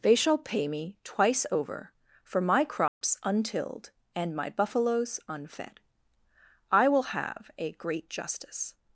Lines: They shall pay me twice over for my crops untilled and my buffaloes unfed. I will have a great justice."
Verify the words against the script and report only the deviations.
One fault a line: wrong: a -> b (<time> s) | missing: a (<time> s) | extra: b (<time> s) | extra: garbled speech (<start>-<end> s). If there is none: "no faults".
no faults